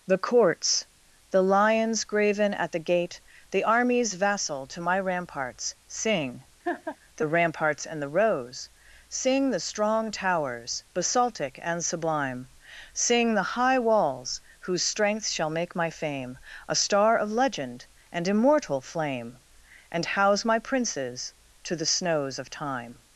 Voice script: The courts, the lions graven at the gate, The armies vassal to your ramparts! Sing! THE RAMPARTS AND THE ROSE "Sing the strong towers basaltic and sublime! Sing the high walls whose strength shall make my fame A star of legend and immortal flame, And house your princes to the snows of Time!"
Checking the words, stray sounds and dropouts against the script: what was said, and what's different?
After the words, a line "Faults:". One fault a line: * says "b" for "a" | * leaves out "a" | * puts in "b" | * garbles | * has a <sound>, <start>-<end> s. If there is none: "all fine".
The courts, the lions graven at the gate, The armies vassal to my ramparts! Sing! THE RAMPARTS AND THE ROSE "Sing the strong towers basaltic and sublime! Sing the high walls whose strength shall make my fame A star of legend and immortal flame, And house my princes to the snows of Time!"
Faults:
* says "my" for "your"
* has a laugh, 6.6-7.0 s
* says "my" for "your"